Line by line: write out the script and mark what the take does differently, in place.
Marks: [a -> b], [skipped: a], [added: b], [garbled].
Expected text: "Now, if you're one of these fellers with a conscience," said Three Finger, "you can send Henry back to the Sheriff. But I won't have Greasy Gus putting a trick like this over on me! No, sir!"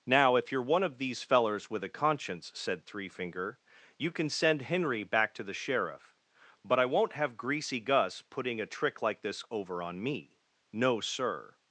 "Now, if you're one of these fellers with a conscience," said Three Finger, "you can send Henry back to the Sheriff. But I won't have Greasy Gus putting a trick like this over on me! No, sir!"